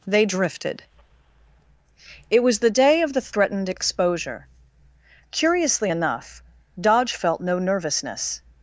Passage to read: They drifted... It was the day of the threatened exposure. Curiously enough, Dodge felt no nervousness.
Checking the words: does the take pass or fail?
pass